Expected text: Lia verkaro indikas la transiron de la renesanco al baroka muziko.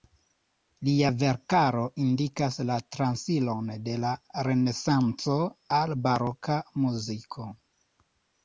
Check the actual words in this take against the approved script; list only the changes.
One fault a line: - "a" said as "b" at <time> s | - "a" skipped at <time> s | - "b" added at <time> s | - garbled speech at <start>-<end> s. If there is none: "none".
none